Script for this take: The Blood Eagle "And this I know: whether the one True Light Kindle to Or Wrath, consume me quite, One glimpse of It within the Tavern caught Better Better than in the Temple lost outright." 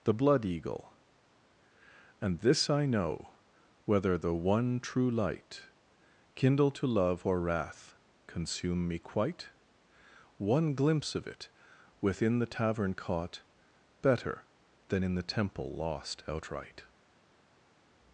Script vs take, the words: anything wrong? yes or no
yes